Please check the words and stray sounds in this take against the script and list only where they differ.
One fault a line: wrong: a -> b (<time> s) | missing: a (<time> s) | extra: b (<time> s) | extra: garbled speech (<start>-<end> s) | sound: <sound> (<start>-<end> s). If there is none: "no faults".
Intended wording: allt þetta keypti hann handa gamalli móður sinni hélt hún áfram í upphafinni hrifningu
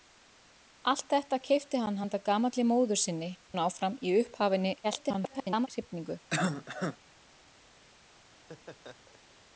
missing: hélt (3.3 s)
extra: garbled speech (4.8-5.7 s)
sound: cough (6.3-7.0 s)
sound: laugh (8.3-9.3 s)